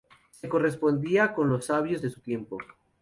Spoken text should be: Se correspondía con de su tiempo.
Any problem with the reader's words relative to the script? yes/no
yes